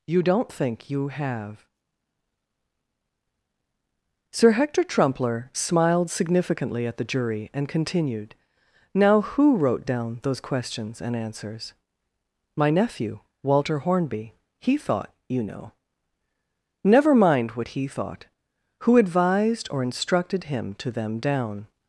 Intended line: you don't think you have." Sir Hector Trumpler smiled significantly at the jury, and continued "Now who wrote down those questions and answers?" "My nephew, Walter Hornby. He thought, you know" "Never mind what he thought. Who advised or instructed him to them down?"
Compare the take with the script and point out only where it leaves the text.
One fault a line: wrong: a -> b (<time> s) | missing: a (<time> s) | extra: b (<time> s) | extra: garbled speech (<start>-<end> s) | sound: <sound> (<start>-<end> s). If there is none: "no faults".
no faults